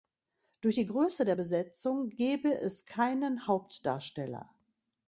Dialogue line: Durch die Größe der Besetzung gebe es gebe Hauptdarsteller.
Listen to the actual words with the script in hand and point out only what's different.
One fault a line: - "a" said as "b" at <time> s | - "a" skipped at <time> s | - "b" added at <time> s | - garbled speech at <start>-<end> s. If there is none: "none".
- "gebe" said as "keinen" at 2.8 s